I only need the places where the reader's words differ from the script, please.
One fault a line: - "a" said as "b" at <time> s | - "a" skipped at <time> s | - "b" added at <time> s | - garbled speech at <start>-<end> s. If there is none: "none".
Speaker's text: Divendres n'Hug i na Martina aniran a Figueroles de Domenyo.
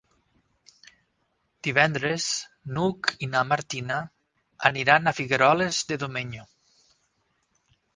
none